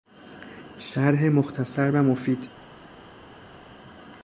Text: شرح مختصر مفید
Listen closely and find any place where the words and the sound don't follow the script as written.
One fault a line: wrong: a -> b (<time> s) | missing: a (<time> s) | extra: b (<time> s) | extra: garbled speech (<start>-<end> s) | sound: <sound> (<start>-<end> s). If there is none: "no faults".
extra: و (1.9 s)